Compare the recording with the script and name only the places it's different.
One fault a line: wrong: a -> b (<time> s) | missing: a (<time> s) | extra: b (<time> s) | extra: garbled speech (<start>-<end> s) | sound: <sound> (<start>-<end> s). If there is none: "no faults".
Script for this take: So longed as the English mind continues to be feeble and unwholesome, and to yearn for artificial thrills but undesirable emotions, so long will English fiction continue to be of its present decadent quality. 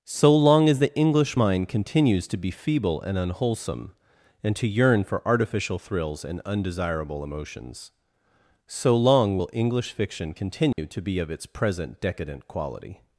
wrong: longed -> long (0.3 s)
wrong: but -> and (6.2 s)
sound: dropout (10.7-10.8 s)